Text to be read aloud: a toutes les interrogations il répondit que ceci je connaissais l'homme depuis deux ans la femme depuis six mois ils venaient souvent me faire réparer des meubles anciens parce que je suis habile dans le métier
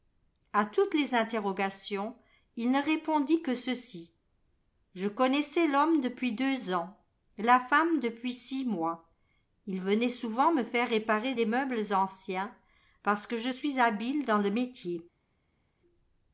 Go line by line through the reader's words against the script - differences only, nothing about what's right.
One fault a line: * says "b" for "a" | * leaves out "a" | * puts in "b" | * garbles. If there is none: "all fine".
* puts in "ne"